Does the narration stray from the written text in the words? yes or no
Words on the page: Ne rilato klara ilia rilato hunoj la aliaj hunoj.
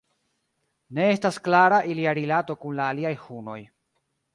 yes